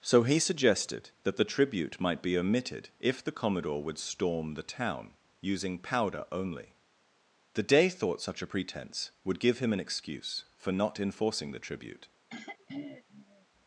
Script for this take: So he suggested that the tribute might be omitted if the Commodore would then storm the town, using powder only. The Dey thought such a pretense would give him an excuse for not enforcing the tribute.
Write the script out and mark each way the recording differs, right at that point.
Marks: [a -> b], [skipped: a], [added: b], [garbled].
So he suggested that the tribute might be omitted if the Commodore would [skipped: then] storm the town, using powder only. The Dey thought such a pretense would give him an excuse for not enforcing the tribute.